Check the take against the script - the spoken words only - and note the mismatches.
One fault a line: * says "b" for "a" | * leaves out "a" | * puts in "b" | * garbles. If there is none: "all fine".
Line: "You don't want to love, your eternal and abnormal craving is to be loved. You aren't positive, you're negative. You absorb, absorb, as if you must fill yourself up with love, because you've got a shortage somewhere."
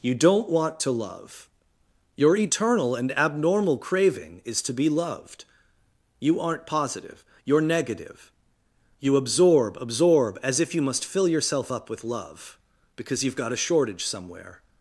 all fine